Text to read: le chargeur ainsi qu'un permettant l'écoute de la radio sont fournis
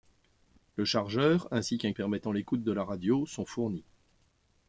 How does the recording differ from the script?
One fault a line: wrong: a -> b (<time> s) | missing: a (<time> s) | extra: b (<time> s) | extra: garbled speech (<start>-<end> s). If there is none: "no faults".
no faults